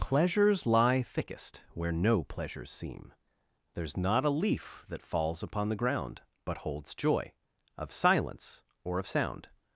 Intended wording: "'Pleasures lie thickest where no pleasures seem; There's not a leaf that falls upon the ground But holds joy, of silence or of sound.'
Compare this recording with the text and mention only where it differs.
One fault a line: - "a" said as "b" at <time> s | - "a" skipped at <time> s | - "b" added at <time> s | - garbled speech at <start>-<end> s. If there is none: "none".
none